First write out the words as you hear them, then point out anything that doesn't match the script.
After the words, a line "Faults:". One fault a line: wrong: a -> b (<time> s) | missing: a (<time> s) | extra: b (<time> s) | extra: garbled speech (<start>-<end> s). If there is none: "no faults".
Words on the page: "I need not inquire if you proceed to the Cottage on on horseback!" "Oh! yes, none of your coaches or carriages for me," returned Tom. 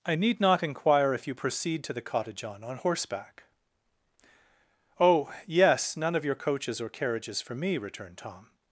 "I need not inquire if you proceed to the Cottage on on horseback!" "Oh! yes, none of your coaches or carriages for me," returned Tom.
Faults:
no faults